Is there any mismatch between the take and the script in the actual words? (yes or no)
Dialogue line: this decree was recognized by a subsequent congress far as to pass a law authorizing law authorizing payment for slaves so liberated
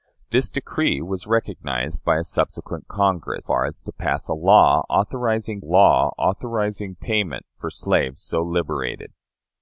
no